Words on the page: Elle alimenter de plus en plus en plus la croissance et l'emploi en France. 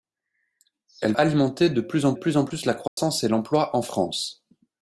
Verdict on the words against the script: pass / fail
pass